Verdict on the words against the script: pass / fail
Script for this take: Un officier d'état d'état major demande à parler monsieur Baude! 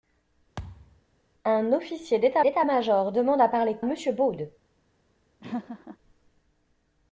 pass